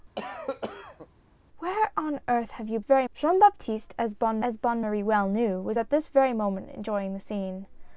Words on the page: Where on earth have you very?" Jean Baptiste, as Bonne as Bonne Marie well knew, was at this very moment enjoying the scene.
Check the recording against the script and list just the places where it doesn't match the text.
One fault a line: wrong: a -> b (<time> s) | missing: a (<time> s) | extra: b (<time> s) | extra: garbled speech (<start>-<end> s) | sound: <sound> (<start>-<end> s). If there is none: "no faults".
sound: cough (0.2-1.1 s)